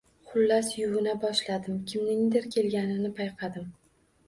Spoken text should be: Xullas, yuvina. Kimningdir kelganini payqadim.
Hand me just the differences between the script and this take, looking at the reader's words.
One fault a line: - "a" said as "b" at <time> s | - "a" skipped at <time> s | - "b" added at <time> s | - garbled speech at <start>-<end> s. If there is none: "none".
- "boshladim" added at 1.2 s